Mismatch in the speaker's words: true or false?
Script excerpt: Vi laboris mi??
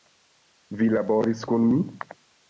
true